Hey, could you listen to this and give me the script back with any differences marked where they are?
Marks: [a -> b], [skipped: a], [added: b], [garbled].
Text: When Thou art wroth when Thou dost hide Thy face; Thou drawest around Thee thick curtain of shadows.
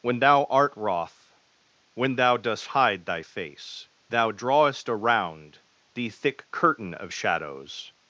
When Thou art wroth when Thou dost hide Thy face; Thou drawest around Thee thick curtain of shadows.